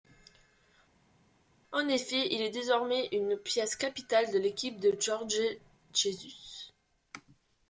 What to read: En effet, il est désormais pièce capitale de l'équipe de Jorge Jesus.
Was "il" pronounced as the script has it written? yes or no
yes